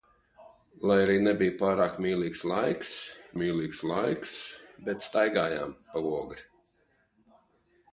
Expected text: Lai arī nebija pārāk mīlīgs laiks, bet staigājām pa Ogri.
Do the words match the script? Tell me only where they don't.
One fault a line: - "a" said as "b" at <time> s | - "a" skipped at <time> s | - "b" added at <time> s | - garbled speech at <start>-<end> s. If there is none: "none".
- "mīlīgs laiks" added at 3.4 s